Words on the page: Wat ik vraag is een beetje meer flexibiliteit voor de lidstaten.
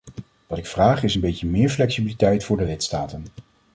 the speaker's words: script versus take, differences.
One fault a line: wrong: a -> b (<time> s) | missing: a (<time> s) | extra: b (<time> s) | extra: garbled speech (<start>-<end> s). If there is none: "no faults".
no faults